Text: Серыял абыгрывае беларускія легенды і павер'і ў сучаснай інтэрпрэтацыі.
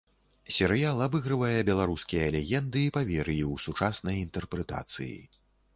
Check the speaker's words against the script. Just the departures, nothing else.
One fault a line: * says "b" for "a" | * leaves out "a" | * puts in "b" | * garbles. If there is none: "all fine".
all fine